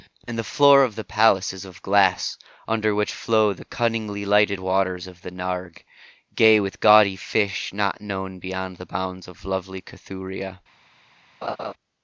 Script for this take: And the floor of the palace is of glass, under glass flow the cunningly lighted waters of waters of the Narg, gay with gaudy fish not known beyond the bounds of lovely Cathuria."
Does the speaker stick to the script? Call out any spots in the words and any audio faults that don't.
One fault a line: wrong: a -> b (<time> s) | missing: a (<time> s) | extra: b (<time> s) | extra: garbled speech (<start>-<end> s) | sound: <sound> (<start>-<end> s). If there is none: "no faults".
wrong: glass -> which (3.0 s)
missing: waters of (5.2 s)
sound: laugh (11.4-11.7 s)